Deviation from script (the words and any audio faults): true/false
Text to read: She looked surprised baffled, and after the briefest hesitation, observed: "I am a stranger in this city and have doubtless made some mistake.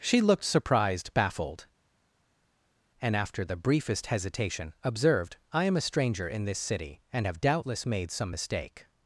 false